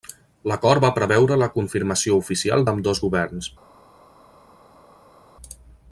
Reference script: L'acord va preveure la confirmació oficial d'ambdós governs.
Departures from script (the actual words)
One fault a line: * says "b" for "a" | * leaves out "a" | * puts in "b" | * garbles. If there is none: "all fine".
all fine